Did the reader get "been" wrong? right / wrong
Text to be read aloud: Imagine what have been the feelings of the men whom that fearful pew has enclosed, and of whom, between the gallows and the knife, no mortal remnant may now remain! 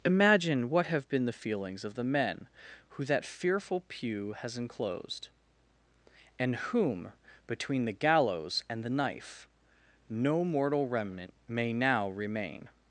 right